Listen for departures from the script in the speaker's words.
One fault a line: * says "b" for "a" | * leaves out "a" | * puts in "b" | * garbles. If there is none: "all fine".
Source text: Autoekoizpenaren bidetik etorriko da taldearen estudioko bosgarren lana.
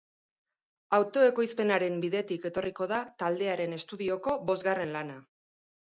all fine